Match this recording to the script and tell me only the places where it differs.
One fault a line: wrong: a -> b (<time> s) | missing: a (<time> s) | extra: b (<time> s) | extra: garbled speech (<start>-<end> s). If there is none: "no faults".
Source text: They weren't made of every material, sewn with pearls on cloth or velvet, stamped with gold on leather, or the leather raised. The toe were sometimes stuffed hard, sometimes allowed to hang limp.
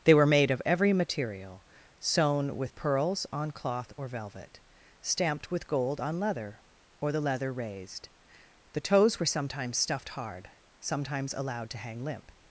wrong: weren't -> were (0.1 s)
wrong: toe -> toes (8.8 s)